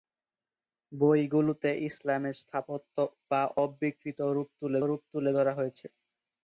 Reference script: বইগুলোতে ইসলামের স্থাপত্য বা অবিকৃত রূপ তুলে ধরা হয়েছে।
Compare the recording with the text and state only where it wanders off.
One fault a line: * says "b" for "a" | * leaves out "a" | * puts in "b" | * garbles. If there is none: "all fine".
* puts in "রূপ তুলে"